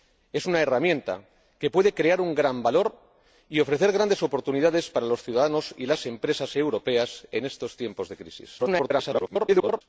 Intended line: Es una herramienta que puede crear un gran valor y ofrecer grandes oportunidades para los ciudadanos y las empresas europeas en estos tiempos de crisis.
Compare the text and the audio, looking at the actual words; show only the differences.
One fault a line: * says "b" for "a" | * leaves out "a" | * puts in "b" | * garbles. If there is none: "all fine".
* garbles